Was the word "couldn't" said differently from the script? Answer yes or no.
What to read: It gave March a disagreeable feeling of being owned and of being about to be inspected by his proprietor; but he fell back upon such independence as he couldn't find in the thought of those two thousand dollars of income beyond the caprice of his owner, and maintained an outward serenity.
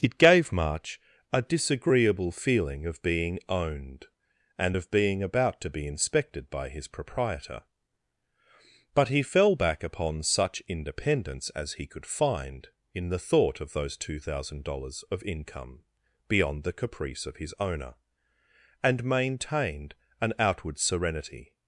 yes